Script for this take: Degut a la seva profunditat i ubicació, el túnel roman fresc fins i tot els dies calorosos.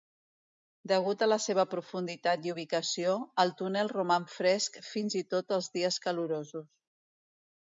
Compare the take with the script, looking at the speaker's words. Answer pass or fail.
pass